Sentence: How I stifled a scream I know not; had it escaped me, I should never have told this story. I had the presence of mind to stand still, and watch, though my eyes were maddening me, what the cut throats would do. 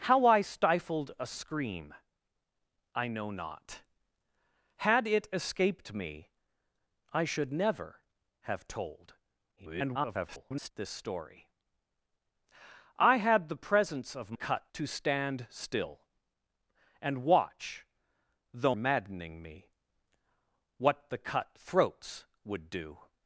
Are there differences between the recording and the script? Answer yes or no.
yes